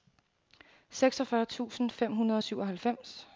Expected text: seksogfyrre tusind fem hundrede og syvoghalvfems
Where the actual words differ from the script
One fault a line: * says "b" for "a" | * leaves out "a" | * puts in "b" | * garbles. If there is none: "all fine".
all fine